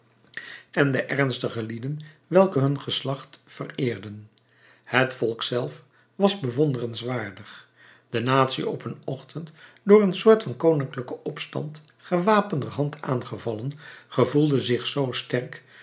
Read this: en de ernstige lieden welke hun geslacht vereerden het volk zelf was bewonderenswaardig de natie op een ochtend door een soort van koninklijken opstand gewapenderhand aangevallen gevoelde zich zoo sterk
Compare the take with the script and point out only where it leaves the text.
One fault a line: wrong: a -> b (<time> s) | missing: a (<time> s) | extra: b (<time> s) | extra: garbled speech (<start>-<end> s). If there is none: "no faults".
no faults